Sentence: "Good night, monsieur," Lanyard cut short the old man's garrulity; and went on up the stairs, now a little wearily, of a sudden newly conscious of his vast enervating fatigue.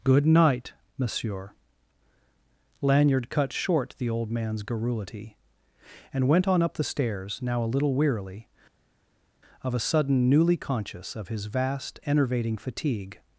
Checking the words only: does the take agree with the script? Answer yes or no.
yes